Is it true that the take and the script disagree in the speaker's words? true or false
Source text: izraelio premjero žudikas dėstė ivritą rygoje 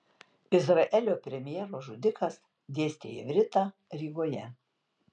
false